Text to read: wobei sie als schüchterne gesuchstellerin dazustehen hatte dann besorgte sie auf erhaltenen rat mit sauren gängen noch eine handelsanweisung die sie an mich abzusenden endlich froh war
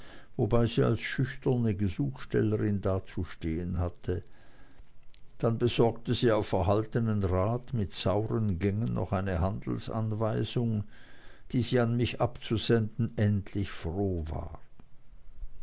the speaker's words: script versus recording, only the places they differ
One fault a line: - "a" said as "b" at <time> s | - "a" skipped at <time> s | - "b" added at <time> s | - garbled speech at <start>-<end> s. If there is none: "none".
none